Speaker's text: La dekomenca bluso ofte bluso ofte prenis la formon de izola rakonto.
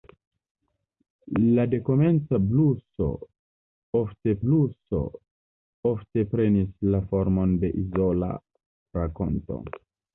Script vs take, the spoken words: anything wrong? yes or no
no